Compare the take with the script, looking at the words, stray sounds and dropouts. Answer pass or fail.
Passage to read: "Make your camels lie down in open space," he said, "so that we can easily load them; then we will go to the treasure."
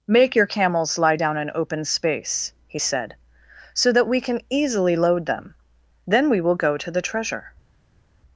pass